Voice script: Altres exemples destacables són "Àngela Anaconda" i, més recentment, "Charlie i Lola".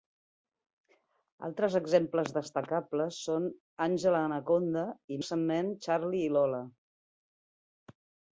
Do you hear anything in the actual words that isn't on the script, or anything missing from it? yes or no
yes